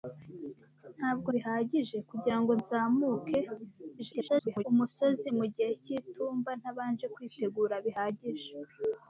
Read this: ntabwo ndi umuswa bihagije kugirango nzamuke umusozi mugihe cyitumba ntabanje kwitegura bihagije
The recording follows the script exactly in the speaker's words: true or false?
false